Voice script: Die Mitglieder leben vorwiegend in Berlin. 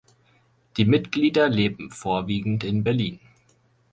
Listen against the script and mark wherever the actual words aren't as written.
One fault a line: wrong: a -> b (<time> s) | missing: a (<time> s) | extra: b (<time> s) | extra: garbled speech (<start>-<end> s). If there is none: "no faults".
no faults